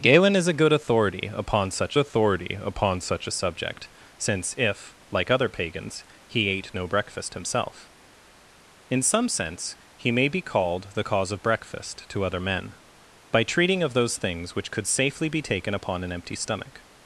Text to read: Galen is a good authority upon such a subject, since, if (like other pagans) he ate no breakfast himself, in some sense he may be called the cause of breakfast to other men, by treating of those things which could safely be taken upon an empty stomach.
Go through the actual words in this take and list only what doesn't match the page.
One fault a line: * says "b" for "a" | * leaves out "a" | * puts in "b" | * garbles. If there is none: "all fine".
* puts in "authority upon such"